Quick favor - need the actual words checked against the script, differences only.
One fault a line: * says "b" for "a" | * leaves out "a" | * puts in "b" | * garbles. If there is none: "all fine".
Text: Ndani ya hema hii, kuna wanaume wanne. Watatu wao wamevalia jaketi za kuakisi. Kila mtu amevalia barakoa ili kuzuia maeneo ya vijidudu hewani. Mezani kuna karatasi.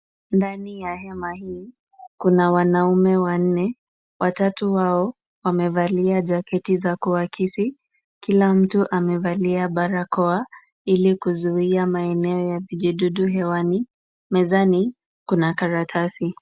all fine